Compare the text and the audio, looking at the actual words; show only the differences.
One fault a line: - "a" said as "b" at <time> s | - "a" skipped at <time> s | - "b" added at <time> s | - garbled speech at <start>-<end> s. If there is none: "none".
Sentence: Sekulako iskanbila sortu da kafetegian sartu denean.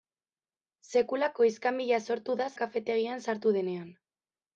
none